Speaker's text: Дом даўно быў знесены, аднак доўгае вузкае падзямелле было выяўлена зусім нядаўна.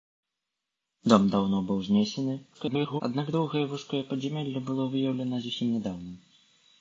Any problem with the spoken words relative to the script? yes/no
yes